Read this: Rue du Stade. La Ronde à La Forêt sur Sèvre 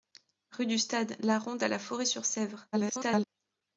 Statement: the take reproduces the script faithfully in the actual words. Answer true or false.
false